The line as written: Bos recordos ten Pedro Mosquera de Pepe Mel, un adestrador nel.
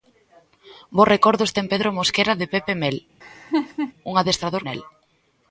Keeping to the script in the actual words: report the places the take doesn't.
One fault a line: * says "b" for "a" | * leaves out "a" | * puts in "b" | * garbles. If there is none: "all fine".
all fine